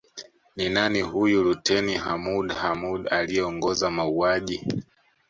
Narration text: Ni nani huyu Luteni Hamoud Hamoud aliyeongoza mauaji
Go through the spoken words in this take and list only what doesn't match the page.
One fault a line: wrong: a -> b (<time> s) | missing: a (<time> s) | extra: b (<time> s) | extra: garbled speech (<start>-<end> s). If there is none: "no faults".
no faults